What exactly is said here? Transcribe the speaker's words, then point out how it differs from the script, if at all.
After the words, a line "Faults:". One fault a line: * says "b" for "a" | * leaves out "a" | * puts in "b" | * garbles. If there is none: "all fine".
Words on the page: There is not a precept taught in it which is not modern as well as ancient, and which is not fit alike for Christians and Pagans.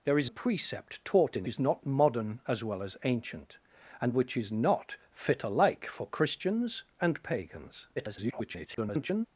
There is a precept taught in is not modern as well as ancient, and which is not fit alike for Christians and Pagans. [garbled]
Faults:
* leaves out "not"
* leaves out "it which"
* garbles